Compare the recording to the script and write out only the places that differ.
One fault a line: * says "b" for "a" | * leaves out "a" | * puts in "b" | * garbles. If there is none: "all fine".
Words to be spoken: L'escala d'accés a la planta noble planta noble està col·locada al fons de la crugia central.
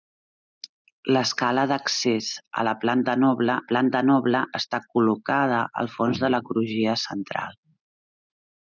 all fine